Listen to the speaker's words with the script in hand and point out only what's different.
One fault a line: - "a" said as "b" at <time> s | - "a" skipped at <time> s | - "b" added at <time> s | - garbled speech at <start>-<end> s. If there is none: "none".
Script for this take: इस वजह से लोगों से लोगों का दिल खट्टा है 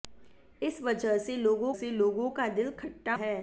none